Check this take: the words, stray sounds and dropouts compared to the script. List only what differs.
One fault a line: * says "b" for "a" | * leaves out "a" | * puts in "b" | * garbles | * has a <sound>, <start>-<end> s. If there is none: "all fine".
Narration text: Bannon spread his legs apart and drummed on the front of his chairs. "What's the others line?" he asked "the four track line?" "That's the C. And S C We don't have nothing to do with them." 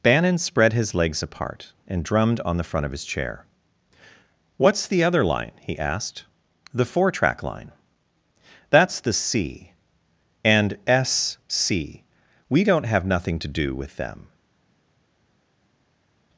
* says "chair" for "chairs"
* says "other" for "others"